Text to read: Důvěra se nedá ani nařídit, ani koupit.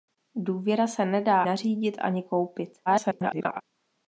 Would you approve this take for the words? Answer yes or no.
no